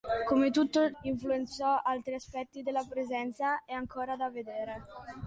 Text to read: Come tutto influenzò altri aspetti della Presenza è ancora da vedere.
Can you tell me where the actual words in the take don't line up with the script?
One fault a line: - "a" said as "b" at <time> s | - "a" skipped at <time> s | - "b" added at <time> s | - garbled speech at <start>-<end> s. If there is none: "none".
none